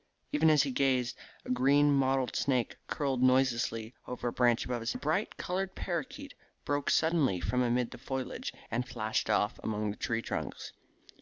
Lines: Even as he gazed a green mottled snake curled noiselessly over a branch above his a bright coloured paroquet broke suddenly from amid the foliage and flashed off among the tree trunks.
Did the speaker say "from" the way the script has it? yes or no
yes